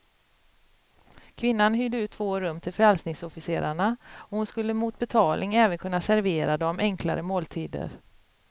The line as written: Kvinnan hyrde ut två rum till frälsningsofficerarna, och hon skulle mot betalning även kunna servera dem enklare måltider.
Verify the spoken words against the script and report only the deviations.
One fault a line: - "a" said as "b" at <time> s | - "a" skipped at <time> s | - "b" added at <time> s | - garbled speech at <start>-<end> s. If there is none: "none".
none